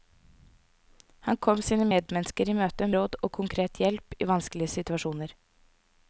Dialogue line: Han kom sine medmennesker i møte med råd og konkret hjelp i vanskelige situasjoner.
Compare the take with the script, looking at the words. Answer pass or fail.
fail